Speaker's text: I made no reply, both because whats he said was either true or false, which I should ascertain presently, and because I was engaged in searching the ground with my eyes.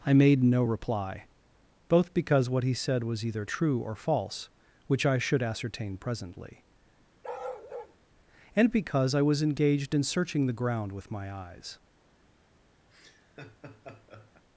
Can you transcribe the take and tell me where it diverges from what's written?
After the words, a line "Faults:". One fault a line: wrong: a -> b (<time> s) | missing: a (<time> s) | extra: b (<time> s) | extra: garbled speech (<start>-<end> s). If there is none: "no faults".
I made no reply, both because what he said was either true or false, which I should ascertain presently, and because I was engaged in searching the ground with my eyes.
Faults:
wrong: whats -> what (2.5 s)